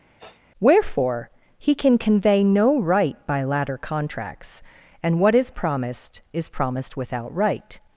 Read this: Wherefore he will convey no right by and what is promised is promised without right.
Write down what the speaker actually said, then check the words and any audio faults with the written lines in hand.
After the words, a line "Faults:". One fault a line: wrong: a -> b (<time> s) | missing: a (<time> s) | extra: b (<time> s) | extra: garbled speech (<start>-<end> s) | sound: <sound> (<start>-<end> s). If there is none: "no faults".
Wherefore he can convey no right by latter contracts, and what is promised is promised without right.
Faults:
sound: sniff (0.2-0.4 s)
wrong: will -> can (1.7 s)
extra: latter contracts (3.4 s)